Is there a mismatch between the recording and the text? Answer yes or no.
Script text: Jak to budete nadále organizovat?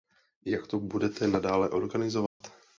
no